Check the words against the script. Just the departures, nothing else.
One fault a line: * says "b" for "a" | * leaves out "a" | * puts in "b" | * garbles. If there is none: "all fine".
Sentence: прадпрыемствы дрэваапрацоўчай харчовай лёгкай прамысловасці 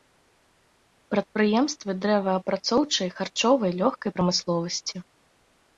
all fine